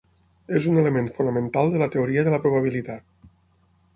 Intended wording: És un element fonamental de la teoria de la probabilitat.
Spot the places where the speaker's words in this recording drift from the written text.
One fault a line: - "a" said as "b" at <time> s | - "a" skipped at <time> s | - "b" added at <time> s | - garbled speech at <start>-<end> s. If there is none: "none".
none